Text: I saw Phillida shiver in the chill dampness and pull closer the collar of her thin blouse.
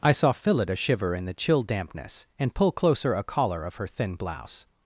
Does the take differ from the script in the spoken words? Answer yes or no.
yes